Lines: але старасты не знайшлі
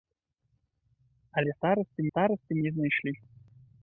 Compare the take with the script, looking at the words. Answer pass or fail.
fail